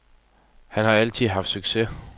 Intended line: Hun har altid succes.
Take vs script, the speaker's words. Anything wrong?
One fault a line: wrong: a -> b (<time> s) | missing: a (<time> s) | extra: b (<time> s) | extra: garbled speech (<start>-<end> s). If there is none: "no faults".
wrong: Hun -> Han (0.7 s)
extra: haft (1.3 s)